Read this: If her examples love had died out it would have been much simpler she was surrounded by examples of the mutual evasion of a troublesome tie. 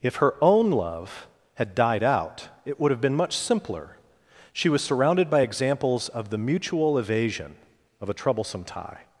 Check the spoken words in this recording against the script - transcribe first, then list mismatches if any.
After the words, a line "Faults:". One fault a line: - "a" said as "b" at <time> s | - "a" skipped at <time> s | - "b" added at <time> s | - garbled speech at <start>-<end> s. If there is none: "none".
If her own love had died out it would have been much simpler she was surrounded by examples of the mutual evasion of a troublesome tie.
Faults:
- "examples" said as "own" at 0.4 s